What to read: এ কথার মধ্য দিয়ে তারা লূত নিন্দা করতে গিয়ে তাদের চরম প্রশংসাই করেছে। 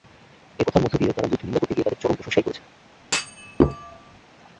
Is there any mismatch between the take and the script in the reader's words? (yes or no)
no